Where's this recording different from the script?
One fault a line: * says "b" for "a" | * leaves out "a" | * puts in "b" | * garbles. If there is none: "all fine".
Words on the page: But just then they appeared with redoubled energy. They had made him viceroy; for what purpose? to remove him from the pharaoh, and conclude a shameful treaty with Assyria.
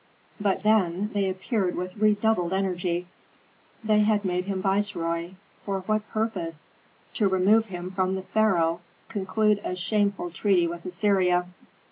* leaves out "just"
* leaves out "and"